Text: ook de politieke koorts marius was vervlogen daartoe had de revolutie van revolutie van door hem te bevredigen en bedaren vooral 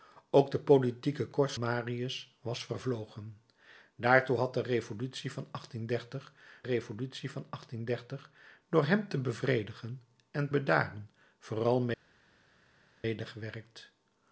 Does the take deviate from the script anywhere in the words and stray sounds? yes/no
no